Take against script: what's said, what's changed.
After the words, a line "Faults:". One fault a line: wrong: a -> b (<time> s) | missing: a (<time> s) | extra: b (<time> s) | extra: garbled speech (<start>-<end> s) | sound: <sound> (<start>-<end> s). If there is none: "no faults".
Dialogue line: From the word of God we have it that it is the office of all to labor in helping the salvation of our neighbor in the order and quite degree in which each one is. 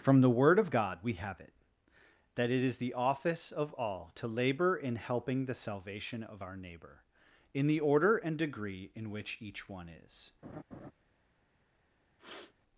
From the word of God we have it that it is the office of all to labor in helping the salvation of our neighbor in the order and degree in which each one is.
Faults:
missing: quite (8.4 s)
sound: laugh (10.4-10.9 s)
sound: sniff (12.2-12.5 s)